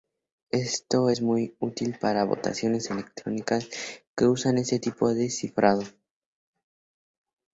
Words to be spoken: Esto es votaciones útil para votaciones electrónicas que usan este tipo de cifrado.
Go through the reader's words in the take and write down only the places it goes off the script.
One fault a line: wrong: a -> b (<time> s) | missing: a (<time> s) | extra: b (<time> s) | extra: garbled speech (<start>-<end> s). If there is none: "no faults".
wrong: votaciones -> muy (1.2 s)